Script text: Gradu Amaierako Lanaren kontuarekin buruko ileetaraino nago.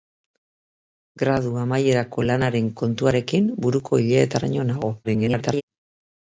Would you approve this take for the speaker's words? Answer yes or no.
no